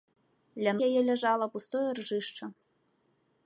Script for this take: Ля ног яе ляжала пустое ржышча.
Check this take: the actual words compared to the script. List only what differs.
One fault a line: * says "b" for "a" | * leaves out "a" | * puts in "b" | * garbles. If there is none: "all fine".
* leaves out "ног"